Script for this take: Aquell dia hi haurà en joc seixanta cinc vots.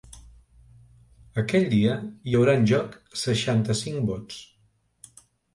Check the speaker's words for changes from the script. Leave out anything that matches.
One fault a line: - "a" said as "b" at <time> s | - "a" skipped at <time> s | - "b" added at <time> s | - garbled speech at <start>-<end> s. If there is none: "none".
none